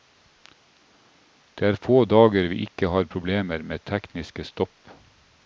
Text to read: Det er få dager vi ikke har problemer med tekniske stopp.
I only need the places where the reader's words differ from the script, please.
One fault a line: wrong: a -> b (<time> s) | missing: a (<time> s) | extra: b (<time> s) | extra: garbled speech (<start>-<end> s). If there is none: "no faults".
no faults